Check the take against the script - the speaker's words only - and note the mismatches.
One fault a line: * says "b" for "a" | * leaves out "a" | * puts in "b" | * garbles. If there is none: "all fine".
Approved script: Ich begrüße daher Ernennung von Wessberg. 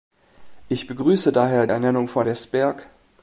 all fine